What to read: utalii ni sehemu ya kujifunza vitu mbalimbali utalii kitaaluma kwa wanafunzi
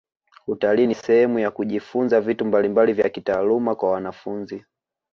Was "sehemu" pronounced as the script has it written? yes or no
yes